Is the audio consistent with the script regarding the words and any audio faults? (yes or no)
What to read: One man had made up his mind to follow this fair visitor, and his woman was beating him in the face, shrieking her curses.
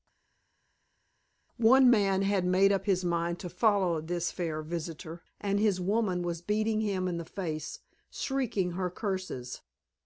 yes